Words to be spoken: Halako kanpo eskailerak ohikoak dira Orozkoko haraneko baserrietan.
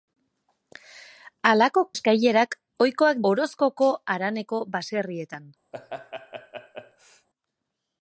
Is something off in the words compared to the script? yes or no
yes